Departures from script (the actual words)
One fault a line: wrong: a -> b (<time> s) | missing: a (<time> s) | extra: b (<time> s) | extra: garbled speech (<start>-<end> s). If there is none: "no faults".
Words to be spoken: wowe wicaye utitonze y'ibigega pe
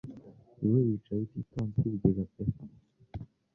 no faults